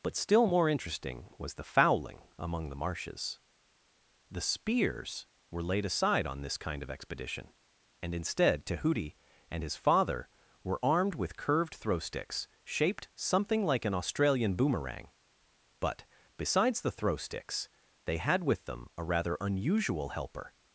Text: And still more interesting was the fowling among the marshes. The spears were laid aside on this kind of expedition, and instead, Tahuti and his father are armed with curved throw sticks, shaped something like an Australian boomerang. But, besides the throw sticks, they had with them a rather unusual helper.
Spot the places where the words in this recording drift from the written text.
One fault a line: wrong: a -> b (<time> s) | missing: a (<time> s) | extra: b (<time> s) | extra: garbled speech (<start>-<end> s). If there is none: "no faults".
wrong: And -> But (0.0 s)
wrong: are -> were (10.6 s)